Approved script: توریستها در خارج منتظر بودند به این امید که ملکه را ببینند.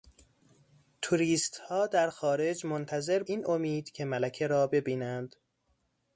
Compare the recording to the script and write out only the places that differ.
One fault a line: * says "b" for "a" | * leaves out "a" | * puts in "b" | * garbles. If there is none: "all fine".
* leaves out "بودند به"